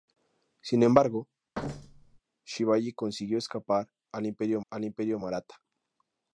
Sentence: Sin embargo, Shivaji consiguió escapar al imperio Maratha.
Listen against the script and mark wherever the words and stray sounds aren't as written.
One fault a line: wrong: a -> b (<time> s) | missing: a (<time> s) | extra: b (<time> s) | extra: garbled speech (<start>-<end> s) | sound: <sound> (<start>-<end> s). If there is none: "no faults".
sound: thud (1.5-2.2 s)
extra: al imperio (4.7 s)